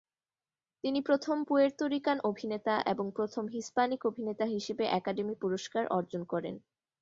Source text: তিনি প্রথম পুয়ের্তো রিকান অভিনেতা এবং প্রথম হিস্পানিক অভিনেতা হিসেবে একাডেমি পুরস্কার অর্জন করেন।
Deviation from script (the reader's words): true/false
false